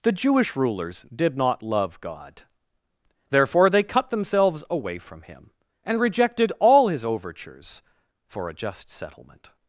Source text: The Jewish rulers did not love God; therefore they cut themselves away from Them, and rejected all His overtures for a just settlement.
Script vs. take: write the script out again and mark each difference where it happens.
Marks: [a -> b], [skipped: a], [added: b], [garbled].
The Jewish rulers did not love God; therefore they cut themselves away from [Them, -> Him] and rejected all His overtures for a just settlement.